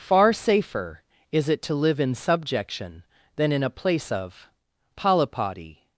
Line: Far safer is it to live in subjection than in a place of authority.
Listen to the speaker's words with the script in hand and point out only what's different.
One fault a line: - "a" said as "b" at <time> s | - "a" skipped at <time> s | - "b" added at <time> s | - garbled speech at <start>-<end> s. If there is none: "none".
- "authority" said as "polypody" at 5.0 s